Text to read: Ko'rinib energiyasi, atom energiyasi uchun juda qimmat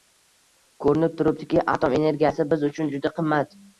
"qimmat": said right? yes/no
yes